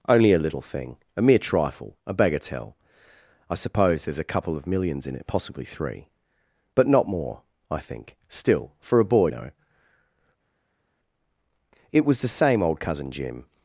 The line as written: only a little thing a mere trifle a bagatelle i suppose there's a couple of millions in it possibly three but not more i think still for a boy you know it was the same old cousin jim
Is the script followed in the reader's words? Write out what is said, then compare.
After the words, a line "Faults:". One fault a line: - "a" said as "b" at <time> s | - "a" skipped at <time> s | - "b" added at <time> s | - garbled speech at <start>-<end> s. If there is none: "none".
only a little thing a mere trifle a bagatelle i suppose there's a couple of millions in it possibly three but not more i think still for a boy know it was the same old cousin jim
Faults:
- "you" skipped at 9.3 s